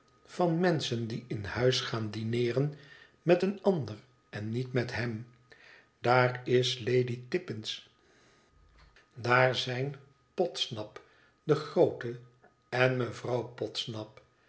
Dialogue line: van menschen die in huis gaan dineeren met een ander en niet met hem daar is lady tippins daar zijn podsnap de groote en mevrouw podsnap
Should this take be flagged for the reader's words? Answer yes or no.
no